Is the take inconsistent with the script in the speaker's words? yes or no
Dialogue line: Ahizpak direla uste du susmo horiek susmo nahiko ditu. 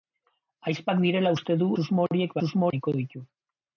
no